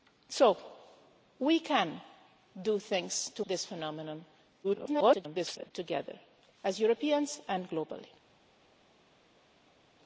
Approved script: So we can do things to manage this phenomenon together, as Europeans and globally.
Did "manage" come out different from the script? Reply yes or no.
yes